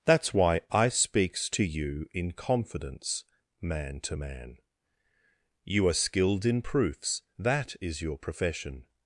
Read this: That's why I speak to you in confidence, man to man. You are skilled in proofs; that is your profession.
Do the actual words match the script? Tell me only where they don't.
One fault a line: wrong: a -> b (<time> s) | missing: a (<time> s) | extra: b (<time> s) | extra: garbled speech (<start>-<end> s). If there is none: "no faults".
wrong: speak -> speaks (0.9 s)